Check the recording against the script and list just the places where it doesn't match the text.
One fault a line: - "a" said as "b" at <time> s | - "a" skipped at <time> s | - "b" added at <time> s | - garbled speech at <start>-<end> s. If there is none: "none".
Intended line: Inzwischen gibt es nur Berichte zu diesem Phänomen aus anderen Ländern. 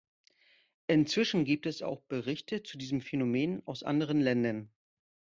- "nur" said as "auch" at 1.8 s